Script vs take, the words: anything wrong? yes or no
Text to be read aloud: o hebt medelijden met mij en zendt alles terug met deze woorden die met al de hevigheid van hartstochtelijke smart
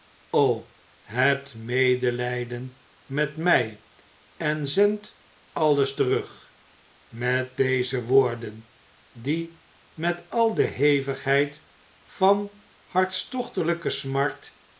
no